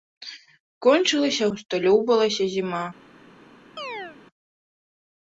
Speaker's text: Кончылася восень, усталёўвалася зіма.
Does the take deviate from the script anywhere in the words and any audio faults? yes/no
yes